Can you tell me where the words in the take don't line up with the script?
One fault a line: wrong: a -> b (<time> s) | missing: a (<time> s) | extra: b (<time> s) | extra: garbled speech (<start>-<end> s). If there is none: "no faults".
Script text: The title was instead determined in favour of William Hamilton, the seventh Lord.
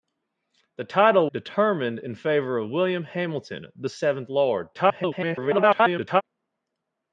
missing: was instead (1.3 s)
extra: garbled speech (4.7-6.2 s)